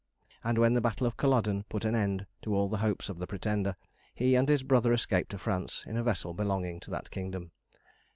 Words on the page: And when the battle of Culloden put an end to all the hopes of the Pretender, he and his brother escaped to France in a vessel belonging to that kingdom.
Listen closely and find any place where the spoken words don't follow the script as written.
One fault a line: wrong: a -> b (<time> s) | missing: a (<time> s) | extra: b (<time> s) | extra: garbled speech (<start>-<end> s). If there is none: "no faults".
no faults